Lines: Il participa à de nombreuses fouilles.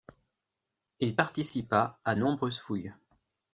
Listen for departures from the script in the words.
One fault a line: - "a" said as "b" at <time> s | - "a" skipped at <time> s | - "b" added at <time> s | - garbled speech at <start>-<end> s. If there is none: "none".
- "de" skipped at 2.1 s